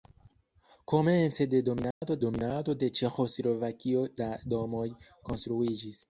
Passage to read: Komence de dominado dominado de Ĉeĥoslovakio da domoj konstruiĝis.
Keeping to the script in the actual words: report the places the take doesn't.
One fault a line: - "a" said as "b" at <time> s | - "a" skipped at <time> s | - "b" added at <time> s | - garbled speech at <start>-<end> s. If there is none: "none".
none